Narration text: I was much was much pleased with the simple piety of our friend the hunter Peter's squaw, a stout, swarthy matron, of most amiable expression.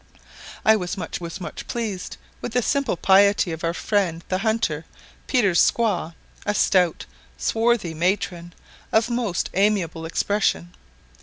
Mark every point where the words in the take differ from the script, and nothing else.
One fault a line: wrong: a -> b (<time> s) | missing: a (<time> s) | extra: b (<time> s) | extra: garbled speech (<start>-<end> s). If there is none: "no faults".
no faults